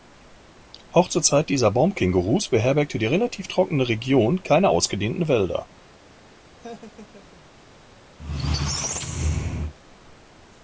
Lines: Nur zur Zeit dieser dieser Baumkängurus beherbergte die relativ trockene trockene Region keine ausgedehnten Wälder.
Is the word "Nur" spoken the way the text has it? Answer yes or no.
no